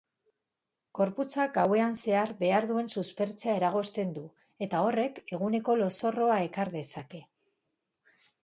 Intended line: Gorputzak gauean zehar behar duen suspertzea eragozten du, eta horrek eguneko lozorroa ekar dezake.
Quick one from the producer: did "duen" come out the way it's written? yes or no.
yes